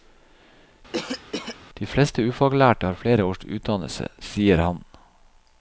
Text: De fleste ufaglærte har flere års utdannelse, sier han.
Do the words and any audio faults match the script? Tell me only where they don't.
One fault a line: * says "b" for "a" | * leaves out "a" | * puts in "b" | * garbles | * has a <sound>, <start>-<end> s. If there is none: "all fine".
* has a cough, 0.9-1.6 s